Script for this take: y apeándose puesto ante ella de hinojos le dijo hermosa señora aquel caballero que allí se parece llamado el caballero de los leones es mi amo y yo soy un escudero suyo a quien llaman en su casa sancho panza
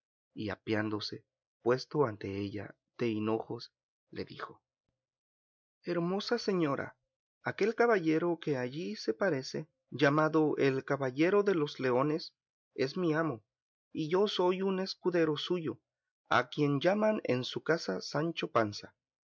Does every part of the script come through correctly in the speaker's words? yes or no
yes